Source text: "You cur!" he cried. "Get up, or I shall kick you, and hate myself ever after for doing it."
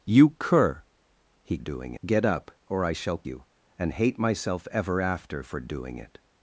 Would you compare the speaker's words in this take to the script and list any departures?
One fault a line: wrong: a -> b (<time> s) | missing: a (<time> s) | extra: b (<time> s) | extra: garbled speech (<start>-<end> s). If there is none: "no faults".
wrong: cried -> doing (1.6 s)
missing: kick (3.2 s)